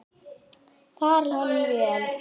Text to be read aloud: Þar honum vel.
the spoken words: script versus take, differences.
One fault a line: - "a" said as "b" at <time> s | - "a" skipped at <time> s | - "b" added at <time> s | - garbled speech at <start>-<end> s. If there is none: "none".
none